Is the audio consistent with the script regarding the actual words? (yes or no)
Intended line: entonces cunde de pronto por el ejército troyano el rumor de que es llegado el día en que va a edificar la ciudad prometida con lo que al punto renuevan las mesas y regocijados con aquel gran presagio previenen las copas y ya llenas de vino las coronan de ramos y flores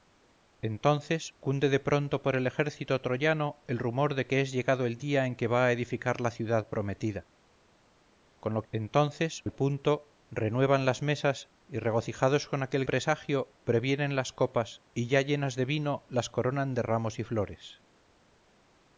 no